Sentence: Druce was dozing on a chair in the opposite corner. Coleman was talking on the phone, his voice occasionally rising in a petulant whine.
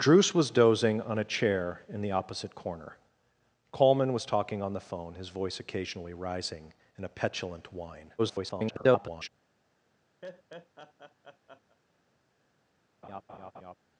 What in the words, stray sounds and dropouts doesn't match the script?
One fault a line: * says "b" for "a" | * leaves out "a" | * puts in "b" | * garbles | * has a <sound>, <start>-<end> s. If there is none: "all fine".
* garbles
* has a laugh, 10.2-11.8 s
* has a laugh, 13.0-13.8 s